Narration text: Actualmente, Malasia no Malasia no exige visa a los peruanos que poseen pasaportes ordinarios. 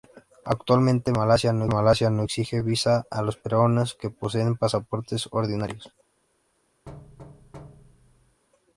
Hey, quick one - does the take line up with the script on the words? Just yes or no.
yes